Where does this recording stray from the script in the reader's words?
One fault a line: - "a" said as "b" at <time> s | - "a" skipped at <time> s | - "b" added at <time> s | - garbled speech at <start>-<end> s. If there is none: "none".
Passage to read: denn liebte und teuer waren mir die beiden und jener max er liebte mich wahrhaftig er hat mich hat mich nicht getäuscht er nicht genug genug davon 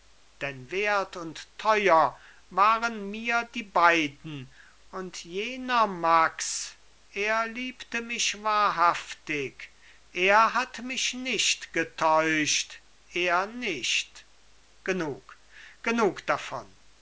- "liebte" said as "wert" at 0.7 s
- "hat mich" skipped at 11.1 s